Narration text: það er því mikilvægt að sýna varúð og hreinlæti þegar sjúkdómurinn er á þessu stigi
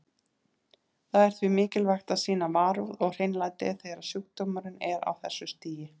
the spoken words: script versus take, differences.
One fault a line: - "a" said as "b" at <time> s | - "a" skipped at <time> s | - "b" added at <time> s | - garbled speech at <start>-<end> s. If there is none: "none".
none